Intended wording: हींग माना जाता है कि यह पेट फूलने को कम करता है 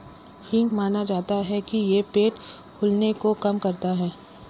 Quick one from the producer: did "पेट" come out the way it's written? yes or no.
yes